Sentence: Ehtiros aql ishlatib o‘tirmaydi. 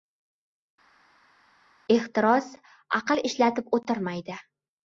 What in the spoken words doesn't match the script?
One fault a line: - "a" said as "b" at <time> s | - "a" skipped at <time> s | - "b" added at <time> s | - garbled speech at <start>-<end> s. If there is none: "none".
none